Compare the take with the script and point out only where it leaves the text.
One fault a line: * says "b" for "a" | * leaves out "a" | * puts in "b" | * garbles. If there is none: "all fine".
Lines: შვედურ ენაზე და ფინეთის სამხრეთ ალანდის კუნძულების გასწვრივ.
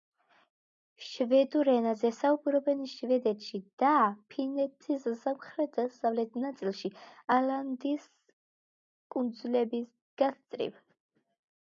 * puts in "საუბრობენ შვედეთში"
* puts in "დასავლეთ ნაწილში"